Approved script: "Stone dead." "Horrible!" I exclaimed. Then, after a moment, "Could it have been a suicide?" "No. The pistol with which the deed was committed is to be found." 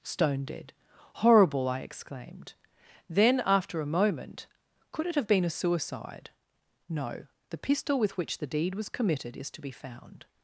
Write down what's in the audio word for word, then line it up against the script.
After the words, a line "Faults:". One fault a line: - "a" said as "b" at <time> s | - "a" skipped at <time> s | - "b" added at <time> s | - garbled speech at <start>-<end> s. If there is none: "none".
"Stone dead." "Horrible!" I exclaimed. Then, after a moment, "Could it have been a suicide?" "No. The pistol with which the deed was committed is to be found."
Faults:
none